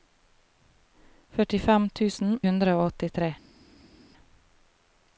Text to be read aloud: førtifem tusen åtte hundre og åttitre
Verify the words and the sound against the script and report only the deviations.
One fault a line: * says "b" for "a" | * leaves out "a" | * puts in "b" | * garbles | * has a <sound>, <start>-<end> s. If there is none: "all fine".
* leaves out "åtte"